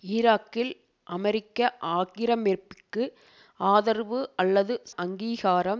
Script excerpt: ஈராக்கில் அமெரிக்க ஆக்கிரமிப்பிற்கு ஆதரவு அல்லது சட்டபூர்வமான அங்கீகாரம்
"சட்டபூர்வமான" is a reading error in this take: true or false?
true